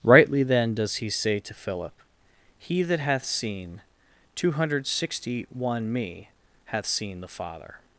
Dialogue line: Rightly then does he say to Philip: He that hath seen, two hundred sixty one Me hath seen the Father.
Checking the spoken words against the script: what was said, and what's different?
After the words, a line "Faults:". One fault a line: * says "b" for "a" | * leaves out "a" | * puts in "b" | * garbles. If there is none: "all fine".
Rightly then does he say to Philip: He that hath seen, two hundred sixty one Me hath seen the Father.
Faults:
all fine